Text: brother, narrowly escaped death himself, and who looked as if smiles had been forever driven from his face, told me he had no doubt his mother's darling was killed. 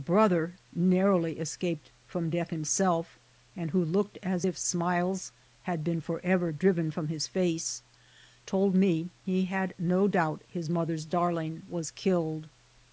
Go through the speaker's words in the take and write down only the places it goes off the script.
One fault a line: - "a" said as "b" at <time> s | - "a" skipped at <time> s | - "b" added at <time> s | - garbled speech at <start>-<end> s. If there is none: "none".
- "from" added at 2.1 s